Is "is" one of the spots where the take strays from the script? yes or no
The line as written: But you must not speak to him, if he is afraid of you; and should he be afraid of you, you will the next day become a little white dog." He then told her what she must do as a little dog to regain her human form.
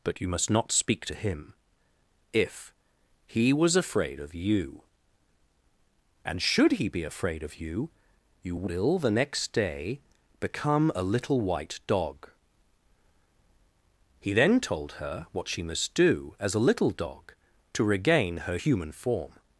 yes